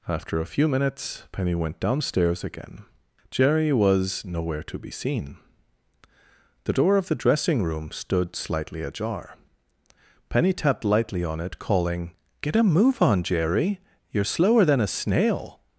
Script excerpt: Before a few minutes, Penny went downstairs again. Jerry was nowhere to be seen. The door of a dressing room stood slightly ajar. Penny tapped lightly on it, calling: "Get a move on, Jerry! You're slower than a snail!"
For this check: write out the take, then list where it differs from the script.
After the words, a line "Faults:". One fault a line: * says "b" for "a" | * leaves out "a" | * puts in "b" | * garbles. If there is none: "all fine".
After a few minutes, Penny went downstairs again. Jerry was nowhere to be seen. The door of the dressing room stood slightly ajar. Penny tapped lightly on it, calling: "Get a move on, Jerry! You're slower than a snail!"
Faults:
* says "After" for "Before"
* says "the" for "a"